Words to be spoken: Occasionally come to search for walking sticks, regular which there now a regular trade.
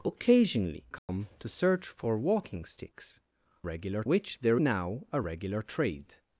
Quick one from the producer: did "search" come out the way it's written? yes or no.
yes